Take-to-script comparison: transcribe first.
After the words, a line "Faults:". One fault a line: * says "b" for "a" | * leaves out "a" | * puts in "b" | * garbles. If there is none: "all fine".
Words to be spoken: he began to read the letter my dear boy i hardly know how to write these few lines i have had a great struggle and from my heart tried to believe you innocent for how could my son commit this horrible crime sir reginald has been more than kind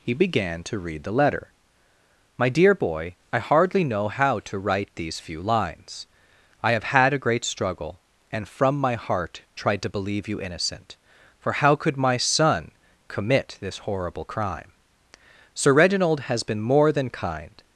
he began to read the letter my dear boy i hardly know how to write these few lines i have had a great struggle and from my heart tried to believe you innocent for how could my son commit this horrible crime sir reginald has been more than kind
Faults:
all fine